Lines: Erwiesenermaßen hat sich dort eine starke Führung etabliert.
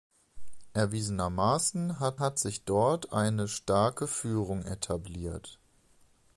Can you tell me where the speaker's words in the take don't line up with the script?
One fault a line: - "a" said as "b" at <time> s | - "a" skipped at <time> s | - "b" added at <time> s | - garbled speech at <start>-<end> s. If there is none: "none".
- "hat" added at 2.2 s